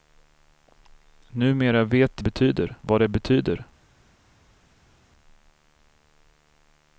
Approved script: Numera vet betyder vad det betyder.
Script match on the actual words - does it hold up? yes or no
yes